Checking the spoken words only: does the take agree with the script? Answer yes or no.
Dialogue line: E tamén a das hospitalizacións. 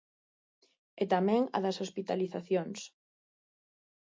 yes